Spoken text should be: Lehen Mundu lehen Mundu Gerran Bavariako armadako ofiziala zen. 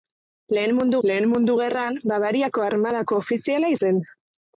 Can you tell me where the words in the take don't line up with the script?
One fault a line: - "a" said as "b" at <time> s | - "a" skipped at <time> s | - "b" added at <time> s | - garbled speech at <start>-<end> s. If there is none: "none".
none